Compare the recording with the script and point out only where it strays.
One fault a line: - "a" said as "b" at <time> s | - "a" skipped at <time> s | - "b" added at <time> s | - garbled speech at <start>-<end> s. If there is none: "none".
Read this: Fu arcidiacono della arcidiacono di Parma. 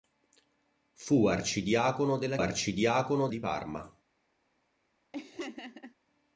none